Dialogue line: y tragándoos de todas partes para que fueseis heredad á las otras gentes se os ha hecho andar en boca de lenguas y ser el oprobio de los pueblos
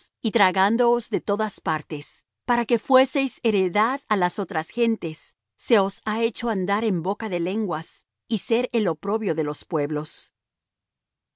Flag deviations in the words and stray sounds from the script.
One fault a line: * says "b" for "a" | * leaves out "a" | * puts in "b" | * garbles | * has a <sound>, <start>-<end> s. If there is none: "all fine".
all fine